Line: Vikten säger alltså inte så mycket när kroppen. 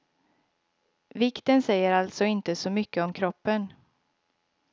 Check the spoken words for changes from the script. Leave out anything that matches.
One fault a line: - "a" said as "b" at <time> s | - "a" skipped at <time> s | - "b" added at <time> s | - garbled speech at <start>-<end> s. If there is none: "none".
- "när" said as "om" at 3.0 s